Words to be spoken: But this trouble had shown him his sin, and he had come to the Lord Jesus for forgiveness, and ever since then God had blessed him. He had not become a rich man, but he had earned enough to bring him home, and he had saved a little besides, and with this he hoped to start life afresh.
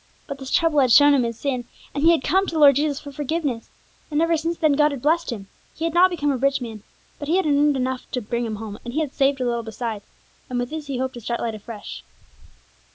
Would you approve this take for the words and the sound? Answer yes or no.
yes